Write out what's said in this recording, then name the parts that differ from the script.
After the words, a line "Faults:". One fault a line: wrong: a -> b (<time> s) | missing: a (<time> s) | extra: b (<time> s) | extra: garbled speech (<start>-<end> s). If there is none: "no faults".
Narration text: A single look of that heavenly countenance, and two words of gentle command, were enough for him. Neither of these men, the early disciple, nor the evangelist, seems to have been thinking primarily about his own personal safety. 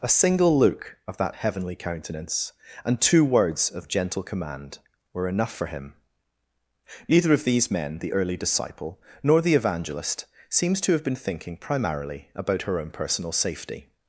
A single look of that heavenly countenance, and two words of gentle command, were enough for him. Neither of these men, the early disciple, nor the evangelist, seems to have been thinking primarily about her own personal safety.
Faults:
wrong: his -> her (12.6 s)